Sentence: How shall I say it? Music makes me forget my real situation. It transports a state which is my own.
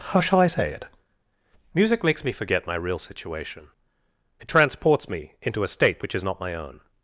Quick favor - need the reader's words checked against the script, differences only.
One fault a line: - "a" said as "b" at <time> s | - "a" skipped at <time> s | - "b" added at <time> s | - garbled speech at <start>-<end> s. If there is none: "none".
- "me into" added at 5.1 s
- "not" added at 6.2 s